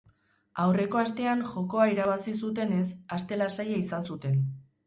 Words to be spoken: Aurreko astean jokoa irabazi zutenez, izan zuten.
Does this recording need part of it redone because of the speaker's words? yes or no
yes